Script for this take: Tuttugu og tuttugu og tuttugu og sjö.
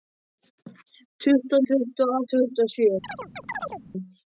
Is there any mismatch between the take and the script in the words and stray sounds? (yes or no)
yes